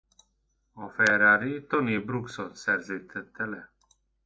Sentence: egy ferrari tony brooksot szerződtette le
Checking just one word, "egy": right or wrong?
wrong